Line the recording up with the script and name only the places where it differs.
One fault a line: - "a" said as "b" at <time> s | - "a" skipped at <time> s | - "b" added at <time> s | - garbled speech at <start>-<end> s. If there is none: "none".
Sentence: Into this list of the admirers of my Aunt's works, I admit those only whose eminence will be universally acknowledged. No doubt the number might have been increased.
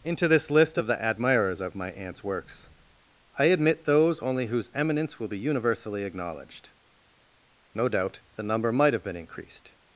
none